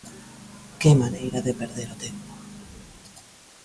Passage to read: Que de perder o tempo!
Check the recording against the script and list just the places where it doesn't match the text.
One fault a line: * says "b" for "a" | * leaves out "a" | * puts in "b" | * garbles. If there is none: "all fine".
* puts in "maneira"